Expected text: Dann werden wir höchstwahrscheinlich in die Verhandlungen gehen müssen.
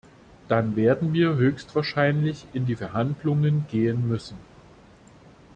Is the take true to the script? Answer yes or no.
yes